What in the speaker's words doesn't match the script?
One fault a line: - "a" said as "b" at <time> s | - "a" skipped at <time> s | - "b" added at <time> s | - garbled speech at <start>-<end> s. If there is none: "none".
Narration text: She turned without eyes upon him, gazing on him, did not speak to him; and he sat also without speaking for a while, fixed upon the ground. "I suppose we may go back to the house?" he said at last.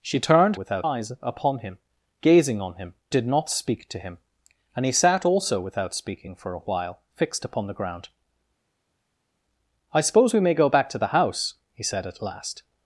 none